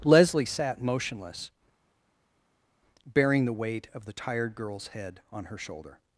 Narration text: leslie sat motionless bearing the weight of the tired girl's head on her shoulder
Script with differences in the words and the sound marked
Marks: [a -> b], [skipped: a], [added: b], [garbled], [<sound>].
leslie sat motionless bearing the weight of the tired girl's head on her shoulder